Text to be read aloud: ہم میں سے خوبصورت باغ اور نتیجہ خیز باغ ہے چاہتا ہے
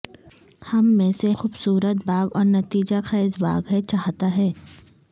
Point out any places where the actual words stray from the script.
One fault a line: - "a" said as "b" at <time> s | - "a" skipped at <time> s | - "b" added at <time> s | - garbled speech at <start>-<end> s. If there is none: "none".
none